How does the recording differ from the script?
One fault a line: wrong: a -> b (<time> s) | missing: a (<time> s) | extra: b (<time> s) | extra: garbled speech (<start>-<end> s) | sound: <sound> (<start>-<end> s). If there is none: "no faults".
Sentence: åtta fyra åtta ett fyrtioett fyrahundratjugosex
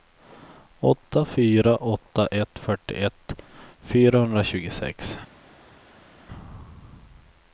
no faults